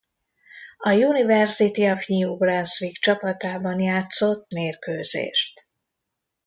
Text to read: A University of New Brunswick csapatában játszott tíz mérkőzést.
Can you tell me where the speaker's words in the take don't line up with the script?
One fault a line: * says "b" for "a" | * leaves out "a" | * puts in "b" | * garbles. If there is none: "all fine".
* leaves out "tíz"